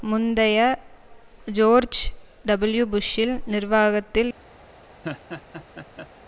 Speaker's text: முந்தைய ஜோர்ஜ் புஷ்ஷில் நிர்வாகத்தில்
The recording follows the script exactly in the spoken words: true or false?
false